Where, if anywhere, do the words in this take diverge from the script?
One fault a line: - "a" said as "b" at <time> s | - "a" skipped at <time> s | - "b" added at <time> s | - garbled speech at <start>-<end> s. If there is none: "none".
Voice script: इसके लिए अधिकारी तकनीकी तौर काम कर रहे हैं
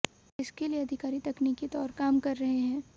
none